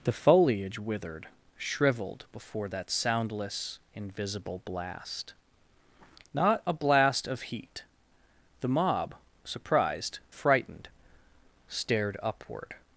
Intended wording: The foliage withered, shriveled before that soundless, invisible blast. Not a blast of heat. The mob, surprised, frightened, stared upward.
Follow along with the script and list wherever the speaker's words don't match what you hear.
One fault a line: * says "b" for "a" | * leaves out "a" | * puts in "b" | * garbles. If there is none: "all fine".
all fine